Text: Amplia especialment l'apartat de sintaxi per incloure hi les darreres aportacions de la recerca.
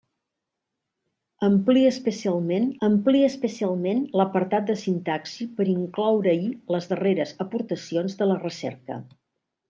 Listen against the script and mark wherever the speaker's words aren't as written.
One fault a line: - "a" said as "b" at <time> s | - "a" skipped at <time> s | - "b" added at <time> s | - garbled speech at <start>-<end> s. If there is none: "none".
- "amplia especialment" added at 2.9 s